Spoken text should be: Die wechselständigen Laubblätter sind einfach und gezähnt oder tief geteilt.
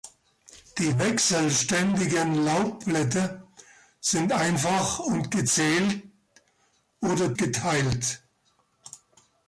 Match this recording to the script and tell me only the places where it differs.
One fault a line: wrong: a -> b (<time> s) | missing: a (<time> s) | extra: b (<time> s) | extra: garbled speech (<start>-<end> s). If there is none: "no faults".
missing: tief (7.3 s)